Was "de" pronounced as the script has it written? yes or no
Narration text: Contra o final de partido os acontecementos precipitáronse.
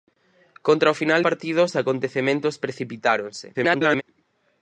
no